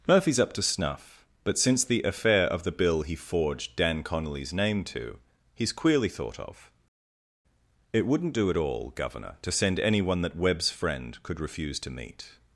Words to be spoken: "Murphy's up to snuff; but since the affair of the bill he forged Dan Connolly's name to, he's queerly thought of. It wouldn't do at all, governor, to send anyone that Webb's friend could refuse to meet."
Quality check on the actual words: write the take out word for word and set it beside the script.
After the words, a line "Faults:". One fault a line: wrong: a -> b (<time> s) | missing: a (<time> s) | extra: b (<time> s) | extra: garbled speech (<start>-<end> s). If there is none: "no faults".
"Murphy's up to snuff; but since the affair of the bill he forged Dan Connolly's name to, he's queerly thought of. It wouldn't do at all, governor, to send anyone that Webb's friend could refuse to meet."
Faults:
no faults